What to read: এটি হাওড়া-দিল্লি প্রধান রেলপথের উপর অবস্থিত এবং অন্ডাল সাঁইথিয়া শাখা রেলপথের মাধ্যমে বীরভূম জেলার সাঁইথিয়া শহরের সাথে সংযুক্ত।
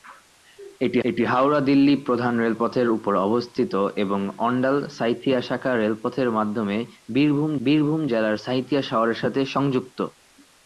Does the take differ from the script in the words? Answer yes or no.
yes